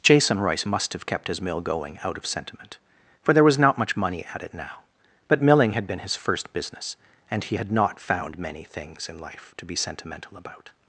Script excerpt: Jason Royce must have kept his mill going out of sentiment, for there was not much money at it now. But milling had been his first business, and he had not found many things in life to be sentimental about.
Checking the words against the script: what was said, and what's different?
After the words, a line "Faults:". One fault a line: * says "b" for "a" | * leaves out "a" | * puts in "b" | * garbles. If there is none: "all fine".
Jason Royce must have kept his mill going out of sentiment, for there was not much money at it now. But milling had been his first business, and he had not found many things in life to be sentimental about.
Faults:
all fine